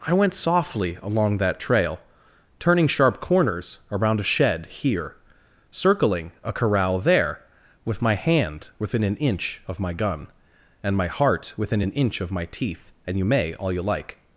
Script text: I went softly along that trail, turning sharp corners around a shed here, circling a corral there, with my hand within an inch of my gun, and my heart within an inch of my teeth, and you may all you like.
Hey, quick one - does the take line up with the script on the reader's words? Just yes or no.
yes